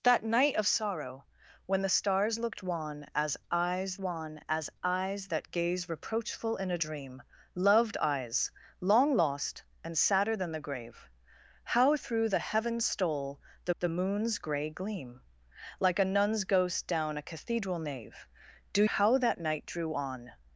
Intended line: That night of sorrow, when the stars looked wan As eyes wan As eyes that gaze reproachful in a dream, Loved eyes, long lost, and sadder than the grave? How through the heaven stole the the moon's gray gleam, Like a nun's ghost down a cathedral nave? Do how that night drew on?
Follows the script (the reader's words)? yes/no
yes